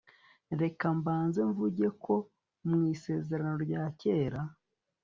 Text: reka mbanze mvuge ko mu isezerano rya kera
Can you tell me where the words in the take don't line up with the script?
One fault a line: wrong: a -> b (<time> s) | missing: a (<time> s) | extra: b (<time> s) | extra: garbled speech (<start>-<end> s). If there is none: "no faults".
no faults